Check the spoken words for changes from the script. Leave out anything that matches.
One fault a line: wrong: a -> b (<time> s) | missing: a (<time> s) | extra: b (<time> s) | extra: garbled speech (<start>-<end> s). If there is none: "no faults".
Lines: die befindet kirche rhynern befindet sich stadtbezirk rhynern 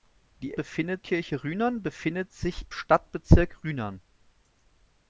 no faults